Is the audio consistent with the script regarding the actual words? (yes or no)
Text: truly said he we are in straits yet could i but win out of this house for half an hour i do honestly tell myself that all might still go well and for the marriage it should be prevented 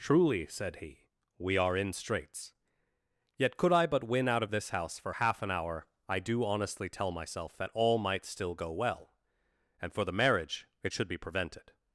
yes